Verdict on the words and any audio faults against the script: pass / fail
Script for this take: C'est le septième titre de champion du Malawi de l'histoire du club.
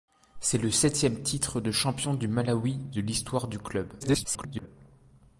fail